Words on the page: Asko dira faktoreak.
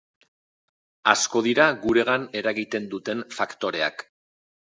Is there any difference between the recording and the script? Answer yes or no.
yes